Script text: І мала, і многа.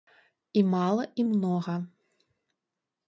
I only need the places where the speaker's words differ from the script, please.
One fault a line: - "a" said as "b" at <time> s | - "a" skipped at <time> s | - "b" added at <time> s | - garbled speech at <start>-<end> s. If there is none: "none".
none